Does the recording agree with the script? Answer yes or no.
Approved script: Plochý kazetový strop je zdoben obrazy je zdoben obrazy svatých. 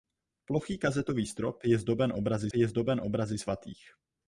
yes